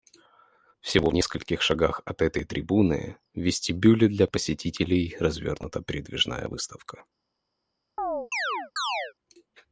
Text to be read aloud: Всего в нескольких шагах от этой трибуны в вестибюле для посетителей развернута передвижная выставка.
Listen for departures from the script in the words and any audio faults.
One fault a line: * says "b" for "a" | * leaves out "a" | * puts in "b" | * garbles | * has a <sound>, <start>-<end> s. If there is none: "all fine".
* has a chirp, 8.0-9.1 s